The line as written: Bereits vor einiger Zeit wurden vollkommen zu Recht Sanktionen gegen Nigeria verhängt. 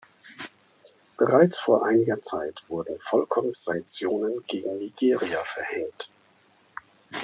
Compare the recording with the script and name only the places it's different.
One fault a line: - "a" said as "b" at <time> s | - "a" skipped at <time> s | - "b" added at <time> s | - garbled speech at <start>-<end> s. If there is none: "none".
- "zu Recht" skipped at 3.5 s